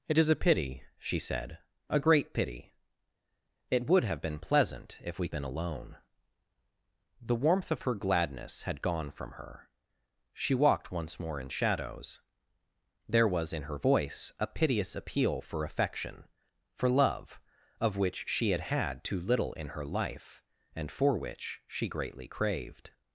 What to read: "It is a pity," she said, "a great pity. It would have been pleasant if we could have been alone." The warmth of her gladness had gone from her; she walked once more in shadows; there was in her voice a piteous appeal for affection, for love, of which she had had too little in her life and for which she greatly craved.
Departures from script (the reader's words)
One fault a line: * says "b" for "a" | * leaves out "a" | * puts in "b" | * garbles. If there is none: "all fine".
* leaves out "could have"